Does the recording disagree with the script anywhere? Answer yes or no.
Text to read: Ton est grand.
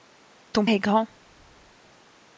no